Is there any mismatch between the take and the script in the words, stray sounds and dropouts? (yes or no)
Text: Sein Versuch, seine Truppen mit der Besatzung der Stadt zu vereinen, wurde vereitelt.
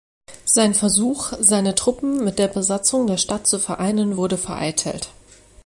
no